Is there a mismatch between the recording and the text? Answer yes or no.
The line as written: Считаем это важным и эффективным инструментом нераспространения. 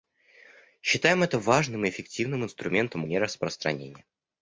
no